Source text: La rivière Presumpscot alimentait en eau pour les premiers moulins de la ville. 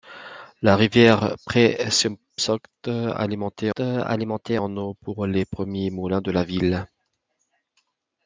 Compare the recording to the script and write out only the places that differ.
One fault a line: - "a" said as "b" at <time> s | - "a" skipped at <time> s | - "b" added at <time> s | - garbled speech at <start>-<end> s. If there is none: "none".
- "alimentait" added at 3.8 s